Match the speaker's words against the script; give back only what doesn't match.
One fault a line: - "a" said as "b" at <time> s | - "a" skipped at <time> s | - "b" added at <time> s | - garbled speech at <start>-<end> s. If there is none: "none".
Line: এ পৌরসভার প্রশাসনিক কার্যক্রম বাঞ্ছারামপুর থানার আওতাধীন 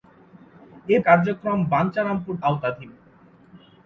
- "পৌরসভার প্রশাসনিক" skipped at 1.0 s
- "থানার" skipped at 2.4 s